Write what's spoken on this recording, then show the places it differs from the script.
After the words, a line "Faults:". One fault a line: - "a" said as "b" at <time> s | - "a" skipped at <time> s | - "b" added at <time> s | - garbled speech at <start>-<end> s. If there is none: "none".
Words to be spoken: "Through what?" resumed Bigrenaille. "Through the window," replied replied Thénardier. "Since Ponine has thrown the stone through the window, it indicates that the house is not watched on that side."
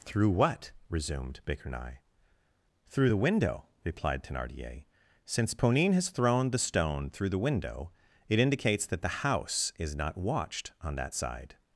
"Through what?" resumed Bigrenaille. "Through the window," replied Thénardier. "Since Ponine has thrown the stone through the window, it indicates that the house is not watched on that side."
Faults:
- "replied" skipped at 4.2 s